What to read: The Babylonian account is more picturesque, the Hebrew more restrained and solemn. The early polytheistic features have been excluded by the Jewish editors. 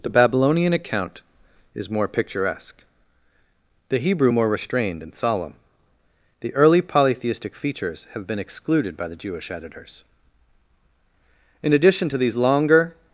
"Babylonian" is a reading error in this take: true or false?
false